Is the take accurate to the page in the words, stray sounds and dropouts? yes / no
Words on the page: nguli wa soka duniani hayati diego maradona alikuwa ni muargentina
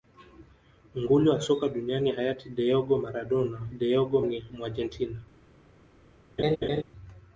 no